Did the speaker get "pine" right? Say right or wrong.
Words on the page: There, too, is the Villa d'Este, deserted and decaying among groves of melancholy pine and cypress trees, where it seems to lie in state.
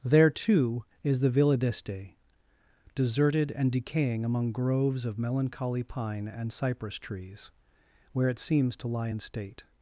right